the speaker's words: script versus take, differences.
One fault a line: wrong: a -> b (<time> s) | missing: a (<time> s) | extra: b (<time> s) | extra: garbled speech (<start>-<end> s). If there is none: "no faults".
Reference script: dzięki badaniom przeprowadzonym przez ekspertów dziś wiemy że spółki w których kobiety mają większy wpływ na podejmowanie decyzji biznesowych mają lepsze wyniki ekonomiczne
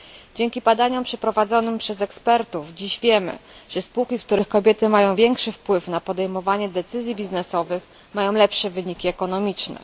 no faults